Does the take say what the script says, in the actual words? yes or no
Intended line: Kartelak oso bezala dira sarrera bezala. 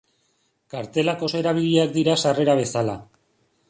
no